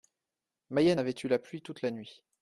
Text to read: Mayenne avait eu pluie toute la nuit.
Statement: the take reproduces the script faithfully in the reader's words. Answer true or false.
false